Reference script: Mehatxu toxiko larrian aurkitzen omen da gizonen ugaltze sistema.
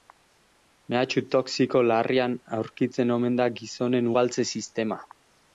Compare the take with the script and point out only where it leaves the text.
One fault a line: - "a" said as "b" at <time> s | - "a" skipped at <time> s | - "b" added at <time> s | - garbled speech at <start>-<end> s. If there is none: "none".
none